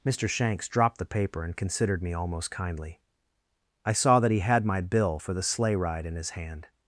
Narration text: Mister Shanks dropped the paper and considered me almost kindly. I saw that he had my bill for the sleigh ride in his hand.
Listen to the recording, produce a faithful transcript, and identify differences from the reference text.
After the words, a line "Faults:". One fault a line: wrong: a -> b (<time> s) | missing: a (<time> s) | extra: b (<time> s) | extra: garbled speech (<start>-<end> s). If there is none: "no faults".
Mister Shanks dropped the paper and considered me almost kindly. I saw that he had my bill for the sleigh ride in his hand.
Faults:
no faults